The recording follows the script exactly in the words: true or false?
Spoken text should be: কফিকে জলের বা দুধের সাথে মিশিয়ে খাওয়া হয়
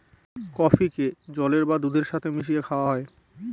true